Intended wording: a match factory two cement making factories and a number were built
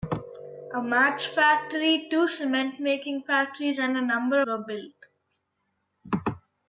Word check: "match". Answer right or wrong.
right